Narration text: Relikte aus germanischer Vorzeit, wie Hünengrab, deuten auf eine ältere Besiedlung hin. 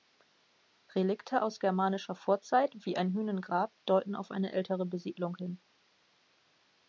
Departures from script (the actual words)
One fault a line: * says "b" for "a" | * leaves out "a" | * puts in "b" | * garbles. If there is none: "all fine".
* puts in "ein"